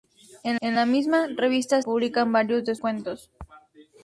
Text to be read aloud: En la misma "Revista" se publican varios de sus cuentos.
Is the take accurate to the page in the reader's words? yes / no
no